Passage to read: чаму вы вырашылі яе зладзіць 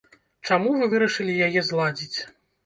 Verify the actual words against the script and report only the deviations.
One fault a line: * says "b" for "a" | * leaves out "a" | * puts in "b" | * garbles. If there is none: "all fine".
all fine